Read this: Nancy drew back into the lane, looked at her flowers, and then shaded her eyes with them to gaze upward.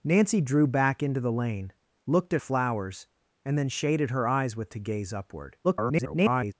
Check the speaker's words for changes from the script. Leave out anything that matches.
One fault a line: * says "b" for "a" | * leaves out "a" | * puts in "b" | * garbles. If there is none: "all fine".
* leaves out "her"
* leaves out "them"
* garbles